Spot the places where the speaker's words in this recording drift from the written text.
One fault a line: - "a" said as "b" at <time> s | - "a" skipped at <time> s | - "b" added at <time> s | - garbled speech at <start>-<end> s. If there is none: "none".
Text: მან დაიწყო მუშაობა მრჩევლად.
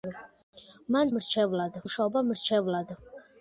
- "დაიწყო" said as "მრჩევლად" at 1.2 s